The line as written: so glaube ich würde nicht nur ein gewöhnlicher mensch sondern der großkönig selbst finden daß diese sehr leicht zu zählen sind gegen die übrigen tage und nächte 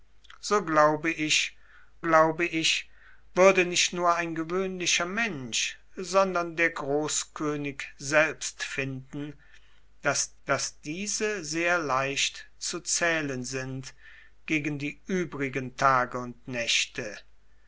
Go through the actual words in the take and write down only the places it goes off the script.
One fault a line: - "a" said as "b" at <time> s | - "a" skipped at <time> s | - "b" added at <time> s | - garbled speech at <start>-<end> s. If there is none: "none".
- "glaube ich" added at 2.0 s
- "daß" added at 10.5 s